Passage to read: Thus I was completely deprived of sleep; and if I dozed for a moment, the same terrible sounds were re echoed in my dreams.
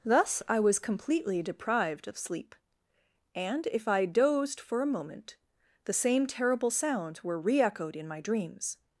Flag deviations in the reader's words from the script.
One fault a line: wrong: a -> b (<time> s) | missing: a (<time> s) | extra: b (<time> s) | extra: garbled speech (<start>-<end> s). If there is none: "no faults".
no faults